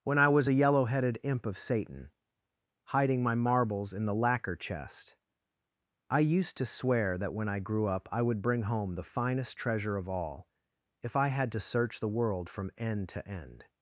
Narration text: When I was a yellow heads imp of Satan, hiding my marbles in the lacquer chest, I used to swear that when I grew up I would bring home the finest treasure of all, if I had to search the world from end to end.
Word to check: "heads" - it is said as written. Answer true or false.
false